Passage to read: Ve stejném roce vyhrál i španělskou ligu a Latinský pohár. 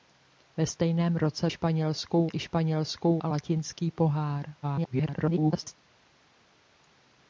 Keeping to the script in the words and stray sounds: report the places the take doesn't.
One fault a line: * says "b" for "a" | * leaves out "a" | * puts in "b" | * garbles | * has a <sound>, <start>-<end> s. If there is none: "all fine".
* says "španělskou" for "vyhrál"
* leaves out "ligu"
* garbles